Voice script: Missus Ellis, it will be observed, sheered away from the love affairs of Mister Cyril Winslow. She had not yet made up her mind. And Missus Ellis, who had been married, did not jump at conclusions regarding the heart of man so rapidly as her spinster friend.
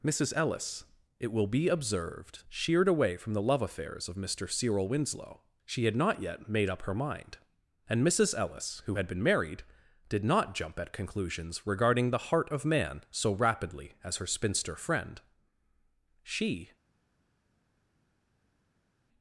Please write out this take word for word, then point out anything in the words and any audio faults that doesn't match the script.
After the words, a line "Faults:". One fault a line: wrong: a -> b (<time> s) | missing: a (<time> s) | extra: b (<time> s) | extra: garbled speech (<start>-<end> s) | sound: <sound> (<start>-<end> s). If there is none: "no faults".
Missus Ellis, it will be observed, sheered away from the love affairs of Mister Cyril Winslow. She had not yet made up her mind. And Missus Ellis, who had been married, did not jump at conclusions regarding the heart of man so rapidly as her spinster friend. She
Faults:
extra: She (16.2 s)